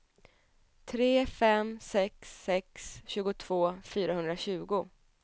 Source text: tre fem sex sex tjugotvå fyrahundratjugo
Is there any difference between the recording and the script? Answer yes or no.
no